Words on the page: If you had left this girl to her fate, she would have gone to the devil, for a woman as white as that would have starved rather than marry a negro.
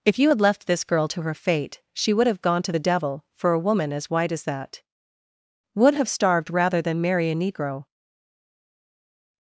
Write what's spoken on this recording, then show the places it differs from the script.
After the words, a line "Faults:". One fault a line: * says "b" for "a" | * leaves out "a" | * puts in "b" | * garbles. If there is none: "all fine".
If you had left this girl to her fate, she would have gone to the devil, for a woman as white as that would have starved rather than marry a negro.
Faults:
all fine